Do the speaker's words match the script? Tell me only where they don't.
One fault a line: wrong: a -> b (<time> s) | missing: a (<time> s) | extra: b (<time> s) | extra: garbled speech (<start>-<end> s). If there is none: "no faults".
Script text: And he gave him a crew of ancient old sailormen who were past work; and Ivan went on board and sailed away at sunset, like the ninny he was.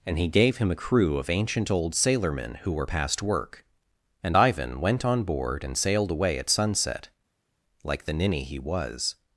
no faults